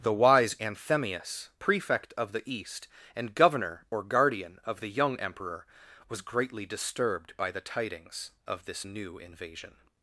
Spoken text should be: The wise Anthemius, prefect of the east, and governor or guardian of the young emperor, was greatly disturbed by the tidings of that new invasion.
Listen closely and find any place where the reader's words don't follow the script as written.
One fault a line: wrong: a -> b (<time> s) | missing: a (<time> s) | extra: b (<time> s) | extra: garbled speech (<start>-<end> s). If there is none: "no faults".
wrong: that -> this (8.7 s)